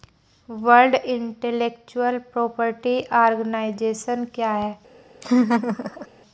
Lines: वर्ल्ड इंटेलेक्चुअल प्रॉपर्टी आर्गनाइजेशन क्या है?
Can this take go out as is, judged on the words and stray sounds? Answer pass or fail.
fail